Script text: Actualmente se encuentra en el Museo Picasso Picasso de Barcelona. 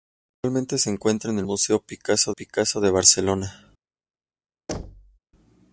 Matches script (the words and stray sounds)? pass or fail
fail